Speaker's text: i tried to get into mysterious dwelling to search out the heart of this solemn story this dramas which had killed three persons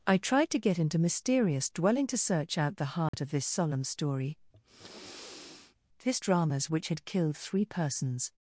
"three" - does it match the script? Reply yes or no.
yes